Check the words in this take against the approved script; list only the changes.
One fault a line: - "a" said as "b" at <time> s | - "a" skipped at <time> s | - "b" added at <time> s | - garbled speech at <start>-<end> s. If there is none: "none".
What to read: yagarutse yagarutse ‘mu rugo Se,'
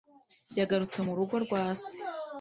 - "yagarutse" skipped at 1.0 s
- "rwa" added at 1.4 s